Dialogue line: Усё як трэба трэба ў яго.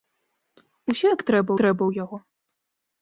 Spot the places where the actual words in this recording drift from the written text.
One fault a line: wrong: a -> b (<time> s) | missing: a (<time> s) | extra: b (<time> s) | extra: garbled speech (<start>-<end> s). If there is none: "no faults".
no faults